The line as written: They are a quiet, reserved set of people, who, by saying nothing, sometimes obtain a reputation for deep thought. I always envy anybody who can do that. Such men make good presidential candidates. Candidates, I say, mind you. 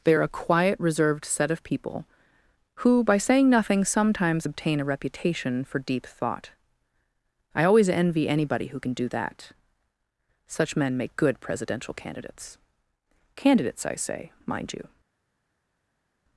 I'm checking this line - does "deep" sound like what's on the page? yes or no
yes